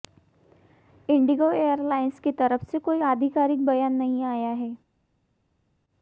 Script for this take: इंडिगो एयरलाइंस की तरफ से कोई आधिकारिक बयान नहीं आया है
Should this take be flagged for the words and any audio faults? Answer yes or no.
no